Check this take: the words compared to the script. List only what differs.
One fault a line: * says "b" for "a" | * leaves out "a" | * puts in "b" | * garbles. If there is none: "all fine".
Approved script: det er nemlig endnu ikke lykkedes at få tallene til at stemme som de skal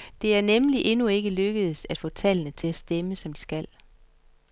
all fine